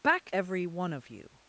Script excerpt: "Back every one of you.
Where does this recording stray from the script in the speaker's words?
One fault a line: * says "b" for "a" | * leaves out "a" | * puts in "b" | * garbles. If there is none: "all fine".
all fine